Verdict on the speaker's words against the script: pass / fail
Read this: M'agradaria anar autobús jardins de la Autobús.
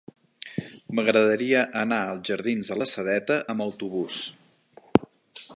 fail